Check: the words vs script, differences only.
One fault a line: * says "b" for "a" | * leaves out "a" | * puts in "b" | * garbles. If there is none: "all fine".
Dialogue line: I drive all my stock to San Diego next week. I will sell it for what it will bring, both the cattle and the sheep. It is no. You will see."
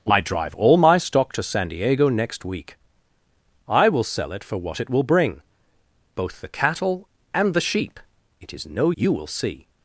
all fine